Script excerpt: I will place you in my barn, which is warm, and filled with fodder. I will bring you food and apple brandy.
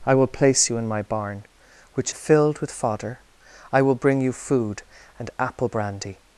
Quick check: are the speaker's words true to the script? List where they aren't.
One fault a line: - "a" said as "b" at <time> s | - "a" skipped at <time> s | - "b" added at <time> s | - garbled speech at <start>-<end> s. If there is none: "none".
- "is warm and" skipped at 2.1 s